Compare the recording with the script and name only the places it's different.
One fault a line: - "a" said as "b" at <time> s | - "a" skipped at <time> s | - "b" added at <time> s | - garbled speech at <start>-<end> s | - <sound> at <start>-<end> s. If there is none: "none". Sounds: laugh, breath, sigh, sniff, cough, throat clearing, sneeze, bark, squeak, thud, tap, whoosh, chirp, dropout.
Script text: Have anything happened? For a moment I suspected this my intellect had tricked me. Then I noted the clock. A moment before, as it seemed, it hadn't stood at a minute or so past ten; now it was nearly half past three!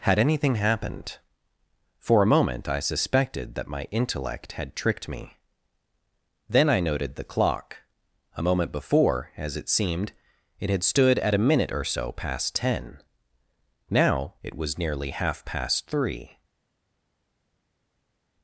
- "Have" said as "Had" at 0.0 s
- "this" said as "that" at 3.5 s
- "hadn't" said as "had" at 10.7 s